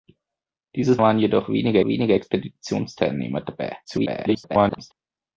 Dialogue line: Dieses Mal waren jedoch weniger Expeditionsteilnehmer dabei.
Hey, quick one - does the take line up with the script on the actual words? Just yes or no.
no